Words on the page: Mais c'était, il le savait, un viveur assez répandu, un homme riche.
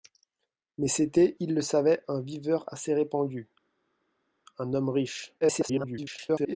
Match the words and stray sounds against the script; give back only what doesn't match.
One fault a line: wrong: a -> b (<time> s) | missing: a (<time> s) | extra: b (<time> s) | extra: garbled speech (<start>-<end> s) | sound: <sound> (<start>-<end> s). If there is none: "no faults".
extra: garbled speech (5.4-6.6 s)